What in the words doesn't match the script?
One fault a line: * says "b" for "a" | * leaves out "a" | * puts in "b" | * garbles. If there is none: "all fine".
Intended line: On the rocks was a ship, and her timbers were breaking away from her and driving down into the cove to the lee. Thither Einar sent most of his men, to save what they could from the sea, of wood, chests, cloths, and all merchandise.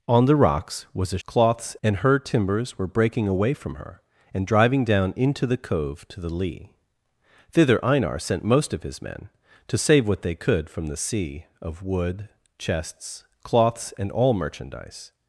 * says "cloths" for "ship"